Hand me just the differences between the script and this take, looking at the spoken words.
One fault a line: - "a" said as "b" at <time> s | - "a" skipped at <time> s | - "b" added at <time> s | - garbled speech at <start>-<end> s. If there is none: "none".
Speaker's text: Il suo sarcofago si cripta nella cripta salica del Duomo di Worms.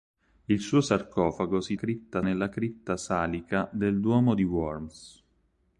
none